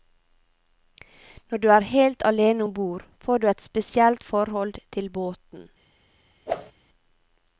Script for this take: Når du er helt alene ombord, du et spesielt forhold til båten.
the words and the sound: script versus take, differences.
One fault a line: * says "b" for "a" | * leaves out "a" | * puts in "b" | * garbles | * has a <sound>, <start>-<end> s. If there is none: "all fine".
* puts in "får"
* has a whoosh, 6.5-6.7 s